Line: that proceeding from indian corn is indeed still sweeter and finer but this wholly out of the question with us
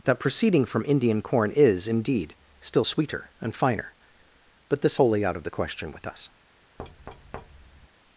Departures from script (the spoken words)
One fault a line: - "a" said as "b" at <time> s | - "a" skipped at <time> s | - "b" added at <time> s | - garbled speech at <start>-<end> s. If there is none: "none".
none